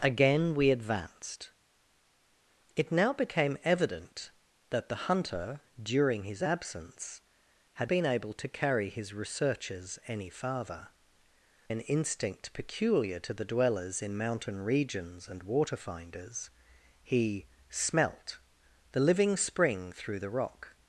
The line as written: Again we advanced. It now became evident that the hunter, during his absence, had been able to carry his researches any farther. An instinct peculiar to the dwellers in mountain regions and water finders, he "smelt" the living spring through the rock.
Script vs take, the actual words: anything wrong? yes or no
no